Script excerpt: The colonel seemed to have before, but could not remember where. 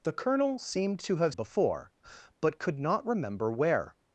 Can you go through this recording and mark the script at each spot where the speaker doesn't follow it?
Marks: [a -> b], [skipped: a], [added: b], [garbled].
The colonel seemed to have before, but could not remember where.